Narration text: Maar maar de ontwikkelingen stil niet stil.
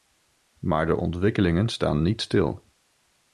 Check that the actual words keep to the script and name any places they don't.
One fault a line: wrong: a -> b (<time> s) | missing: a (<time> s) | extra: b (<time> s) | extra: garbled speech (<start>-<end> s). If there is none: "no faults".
missing: maar (0.8 s)
wrong: stil -> staan (1.7 s)